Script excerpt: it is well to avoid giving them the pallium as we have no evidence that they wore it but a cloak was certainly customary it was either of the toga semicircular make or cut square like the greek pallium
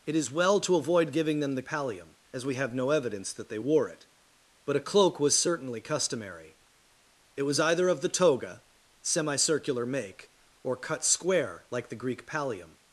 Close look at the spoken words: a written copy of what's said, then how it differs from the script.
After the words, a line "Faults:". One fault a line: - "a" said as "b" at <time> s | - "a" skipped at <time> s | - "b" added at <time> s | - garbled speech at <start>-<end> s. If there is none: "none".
it is well to avoid giving them the pallium as we have no evidence that they wore it but a cloak was certainly customary it was either of the toga semicircular make or cut square like the greek pallium
Faults:
none